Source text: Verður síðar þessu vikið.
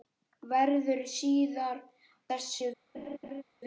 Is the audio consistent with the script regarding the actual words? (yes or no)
yes